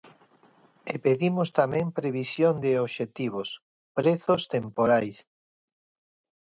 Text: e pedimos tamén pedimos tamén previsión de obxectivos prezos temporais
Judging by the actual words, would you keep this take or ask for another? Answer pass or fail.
fail